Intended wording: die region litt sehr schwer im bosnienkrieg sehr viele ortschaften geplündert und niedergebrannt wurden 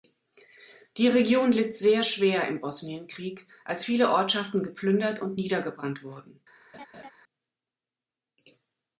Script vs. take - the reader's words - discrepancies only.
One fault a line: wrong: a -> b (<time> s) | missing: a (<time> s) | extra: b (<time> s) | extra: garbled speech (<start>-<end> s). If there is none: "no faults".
wrong: sehr -> als (3.6 s)